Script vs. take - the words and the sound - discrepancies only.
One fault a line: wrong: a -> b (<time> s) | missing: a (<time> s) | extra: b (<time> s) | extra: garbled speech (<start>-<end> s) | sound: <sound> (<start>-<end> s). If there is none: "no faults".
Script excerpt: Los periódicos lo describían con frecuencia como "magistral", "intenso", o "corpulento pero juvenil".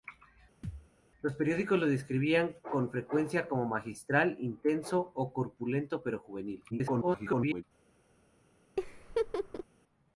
sound: thud (0.6-0.9 s)
extra: garbled speech (6.7-7.6 s)
sound: laugh (8.8-9.6 s)